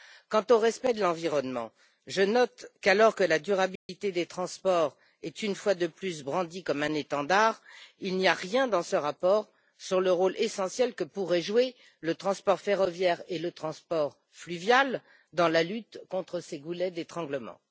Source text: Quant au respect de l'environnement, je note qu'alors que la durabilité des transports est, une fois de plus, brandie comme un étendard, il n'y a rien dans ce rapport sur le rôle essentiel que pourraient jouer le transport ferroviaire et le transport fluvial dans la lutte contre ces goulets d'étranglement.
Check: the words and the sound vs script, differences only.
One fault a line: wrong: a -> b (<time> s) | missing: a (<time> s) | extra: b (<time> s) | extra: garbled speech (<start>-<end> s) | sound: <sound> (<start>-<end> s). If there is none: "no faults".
sound: dropout (3.8-3.9 s)